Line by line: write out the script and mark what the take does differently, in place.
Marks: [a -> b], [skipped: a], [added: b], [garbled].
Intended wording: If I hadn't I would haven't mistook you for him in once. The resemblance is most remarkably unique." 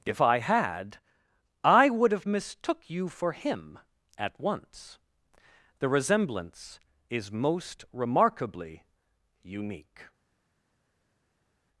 If I [hadn't -> had] I would [haven't -> have] mistook you for him [in -> at] once. The resemblance is most remarkably unique."